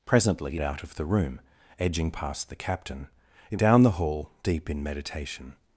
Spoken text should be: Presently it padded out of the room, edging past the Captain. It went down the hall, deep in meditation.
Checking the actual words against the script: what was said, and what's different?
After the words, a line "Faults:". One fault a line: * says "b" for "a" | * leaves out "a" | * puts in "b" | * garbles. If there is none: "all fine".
Presently out of the room, edging past the Captain. It down the hall, deep in meditation.
Faults:
* leaves out "it padded"
* leaves out "went"